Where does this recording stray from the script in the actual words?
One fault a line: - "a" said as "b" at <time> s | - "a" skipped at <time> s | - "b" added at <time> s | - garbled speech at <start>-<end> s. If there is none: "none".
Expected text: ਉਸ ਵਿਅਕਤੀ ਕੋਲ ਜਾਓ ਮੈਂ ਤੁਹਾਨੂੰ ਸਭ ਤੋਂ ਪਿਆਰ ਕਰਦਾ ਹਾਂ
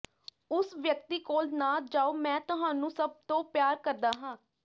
- "ਨਾ" added at 1.5 s